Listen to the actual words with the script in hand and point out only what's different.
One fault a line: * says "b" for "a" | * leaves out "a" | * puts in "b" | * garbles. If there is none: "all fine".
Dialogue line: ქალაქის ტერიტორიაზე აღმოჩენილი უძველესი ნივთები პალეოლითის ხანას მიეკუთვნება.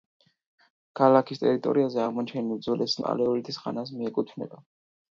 * leaves out "ნივთები"